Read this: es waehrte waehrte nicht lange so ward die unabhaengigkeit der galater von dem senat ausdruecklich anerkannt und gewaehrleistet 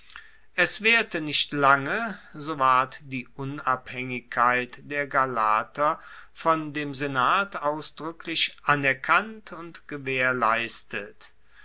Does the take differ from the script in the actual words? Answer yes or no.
yes